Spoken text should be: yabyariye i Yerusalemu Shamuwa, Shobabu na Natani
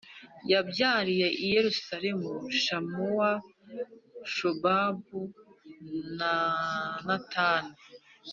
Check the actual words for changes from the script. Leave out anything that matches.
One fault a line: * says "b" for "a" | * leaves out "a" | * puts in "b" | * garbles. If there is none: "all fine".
all fine